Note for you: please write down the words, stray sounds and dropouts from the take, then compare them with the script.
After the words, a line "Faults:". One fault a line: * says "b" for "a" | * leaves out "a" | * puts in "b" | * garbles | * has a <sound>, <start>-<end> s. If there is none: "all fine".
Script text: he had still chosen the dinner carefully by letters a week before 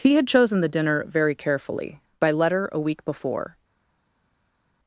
he had chosen the dinner very carefully by letter a week before
Faults:
* leaves out "still"
* puts in "very"
* says "letter" for "letters"